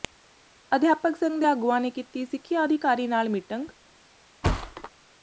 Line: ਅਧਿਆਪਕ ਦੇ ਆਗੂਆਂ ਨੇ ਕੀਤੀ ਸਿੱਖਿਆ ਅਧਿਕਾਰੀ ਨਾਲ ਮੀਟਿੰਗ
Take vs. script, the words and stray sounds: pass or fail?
fail